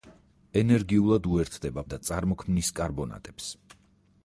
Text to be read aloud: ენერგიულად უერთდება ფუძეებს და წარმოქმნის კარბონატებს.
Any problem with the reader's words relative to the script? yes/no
yes